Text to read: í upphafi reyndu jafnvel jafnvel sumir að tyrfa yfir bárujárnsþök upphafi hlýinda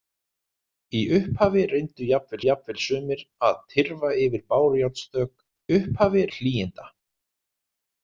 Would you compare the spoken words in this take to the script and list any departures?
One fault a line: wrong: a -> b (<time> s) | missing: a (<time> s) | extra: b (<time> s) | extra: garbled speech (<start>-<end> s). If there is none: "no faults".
no faults